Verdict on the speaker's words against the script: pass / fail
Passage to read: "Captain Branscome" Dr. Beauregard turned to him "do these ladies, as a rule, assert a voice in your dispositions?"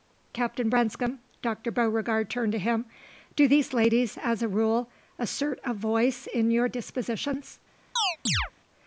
pass